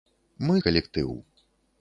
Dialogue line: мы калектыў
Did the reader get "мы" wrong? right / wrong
right